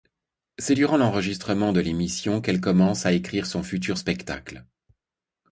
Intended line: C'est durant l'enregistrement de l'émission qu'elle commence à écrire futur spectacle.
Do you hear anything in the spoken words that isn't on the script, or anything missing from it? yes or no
yes